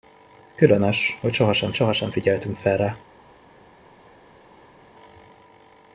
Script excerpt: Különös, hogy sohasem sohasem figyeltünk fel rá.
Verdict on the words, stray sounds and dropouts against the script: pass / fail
pass